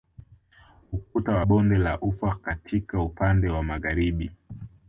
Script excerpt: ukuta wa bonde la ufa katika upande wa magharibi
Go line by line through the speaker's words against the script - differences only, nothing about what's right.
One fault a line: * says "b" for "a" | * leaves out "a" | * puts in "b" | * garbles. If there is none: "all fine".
all fine